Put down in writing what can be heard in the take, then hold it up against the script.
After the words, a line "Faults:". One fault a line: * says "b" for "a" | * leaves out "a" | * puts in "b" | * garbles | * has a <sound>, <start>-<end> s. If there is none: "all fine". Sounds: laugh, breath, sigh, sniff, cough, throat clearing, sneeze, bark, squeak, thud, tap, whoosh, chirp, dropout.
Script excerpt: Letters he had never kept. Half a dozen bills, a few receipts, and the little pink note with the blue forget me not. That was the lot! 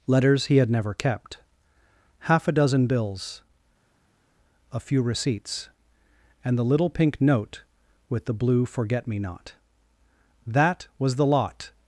Letters he had never kept. Half a dozen bills, a few receipts, and the little pink note with the blue forget me not. That was the lot!
Faults:
all fine